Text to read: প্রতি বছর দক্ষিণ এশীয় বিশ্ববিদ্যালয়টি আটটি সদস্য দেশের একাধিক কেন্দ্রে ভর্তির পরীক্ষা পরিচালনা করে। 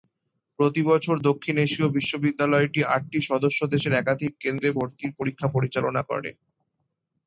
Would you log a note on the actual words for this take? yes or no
no